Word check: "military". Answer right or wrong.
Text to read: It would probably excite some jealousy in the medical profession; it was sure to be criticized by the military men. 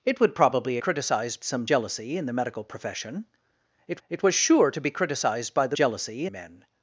wrong